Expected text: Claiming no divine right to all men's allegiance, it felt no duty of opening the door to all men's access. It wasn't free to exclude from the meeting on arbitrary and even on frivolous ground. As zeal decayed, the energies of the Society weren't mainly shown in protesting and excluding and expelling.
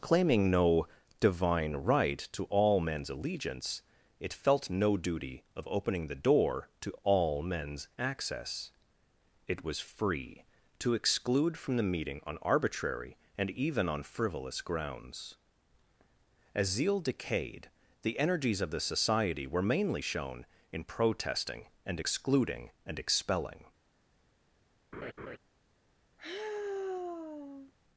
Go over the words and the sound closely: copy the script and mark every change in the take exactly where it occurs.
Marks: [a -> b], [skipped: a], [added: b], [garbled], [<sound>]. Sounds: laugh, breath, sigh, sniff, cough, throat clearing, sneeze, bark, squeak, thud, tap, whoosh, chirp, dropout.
Claiming no divine right to all men's allegiance, it felt no duty of opening the door to all men's access. It [wasn't -> was] free to exclude from the meeting on arbitrary and even on frivolous [ground. -> grounds] As zeal decayed, the energies of the Society [weren't -> were] mainly shown in protesting and excluding and expelling. [laugh] [sigh]